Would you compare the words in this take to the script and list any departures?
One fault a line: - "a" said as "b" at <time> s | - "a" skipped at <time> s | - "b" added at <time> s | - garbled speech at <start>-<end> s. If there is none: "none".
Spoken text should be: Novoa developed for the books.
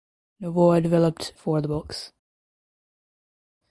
none